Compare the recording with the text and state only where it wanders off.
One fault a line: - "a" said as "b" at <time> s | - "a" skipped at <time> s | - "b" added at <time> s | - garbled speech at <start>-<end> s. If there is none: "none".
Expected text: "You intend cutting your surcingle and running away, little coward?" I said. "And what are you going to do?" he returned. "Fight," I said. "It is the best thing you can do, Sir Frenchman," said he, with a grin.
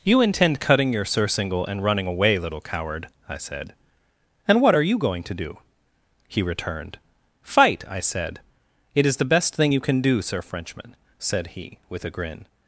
none